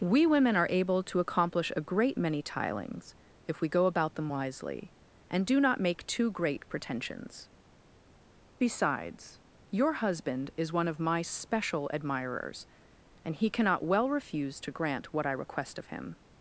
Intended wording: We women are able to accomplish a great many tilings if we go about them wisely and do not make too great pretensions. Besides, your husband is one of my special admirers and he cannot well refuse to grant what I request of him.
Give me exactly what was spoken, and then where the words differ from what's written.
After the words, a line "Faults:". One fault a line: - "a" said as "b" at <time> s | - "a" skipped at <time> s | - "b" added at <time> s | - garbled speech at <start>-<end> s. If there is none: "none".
We women are able to accomplish a great many tilings if we go about them wisely and do not make too great pretensions. Besides, your husband is one of my special admirers and he cannot well refuse to grant what I request of him.
Faults:
none